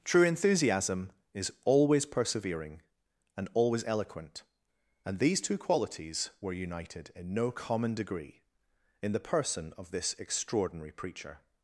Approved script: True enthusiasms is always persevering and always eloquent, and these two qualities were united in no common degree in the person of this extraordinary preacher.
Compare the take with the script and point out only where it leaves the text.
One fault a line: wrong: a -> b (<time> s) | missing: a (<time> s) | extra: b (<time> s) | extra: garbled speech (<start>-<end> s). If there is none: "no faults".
wrong: enthusiasms -> enthusiasm (0.2 s)